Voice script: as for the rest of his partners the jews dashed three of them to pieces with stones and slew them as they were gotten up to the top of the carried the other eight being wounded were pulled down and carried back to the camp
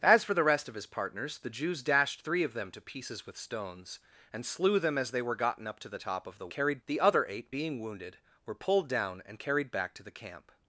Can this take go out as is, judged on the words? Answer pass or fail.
pass